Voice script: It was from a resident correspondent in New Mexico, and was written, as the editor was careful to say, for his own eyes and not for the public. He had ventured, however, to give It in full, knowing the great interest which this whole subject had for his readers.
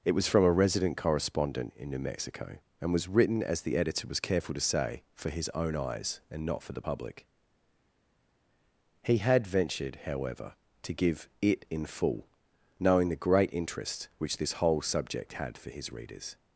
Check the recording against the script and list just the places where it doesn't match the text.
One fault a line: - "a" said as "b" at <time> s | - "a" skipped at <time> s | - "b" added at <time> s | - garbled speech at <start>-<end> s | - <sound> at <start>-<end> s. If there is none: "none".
none